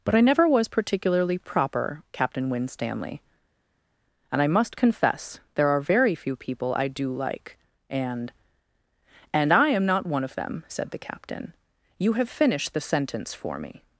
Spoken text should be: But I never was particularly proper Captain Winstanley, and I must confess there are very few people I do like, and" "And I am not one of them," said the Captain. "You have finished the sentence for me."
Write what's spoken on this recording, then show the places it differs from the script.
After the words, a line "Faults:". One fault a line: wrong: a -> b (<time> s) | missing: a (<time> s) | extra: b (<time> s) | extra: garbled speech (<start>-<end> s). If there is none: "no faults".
But I never was particularly proper Captain Winstanley, and I must confess there are very few people I do like, and" "And I am not one of them," said the Captain. "You have finished the sentence for me."
Faults:
no faults